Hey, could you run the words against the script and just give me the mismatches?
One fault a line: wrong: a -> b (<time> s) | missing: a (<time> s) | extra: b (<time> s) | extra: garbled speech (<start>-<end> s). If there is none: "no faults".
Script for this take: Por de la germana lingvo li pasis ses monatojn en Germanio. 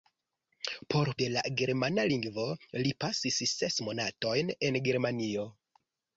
no faults